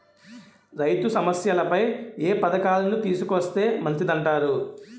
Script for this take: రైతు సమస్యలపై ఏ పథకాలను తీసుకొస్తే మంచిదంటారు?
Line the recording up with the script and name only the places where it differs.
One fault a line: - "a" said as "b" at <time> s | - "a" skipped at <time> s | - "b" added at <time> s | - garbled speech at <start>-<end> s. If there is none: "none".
none